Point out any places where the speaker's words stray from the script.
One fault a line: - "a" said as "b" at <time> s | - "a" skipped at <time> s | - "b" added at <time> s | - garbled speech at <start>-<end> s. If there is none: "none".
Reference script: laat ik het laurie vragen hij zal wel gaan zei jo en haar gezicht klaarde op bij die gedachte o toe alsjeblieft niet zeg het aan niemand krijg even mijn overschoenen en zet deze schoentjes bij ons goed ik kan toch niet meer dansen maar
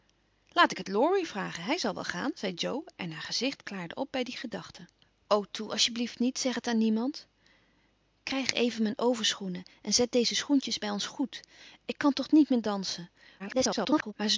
- garbled speech at 13.4-14.1 s